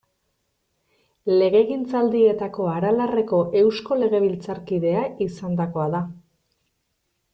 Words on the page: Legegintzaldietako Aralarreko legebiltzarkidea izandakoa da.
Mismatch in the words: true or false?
true